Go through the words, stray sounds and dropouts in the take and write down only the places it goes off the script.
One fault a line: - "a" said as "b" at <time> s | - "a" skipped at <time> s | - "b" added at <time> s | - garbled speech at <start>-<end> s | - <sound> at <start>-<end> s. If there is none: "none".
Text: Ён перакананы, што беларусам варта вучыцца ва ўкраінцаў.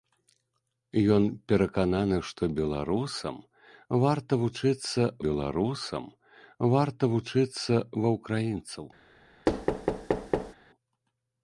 - "беларусам варта вучыцца" added at 5.3 s
- thud at 9.5-10.5 s